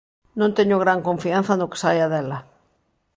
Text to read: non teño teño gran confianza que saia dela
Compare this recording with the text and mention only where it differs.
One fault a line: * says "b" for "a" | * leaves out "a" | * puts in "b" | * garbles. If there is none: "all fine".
* leaves out "teño"
* puts in "no"